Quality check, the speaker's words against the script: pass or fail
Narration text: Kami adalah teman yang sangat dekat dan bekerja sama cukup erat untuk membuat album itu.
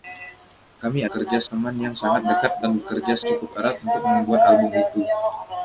fail